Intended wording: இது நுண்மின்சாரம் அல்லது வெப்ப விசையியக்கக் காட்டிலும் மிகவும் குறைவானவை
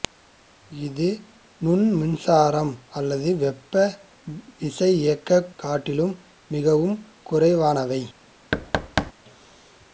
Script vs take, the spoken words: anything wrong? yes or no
no